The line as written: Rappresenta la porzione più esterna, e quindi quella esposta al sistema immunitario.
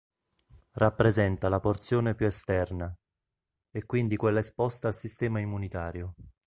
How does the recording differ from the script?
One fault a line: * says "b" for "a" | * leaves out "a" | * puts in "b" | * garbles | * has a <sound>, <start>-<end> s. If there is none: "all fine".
all fine